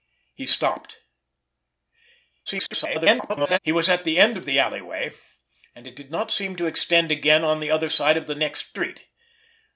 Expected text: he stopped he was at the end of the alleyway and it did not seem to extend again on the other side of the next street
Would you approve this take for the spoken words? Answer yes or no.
no